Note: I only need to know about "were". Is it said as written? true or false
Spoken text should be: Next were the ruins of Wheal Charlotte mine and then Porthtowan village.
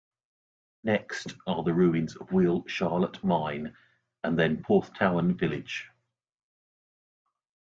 false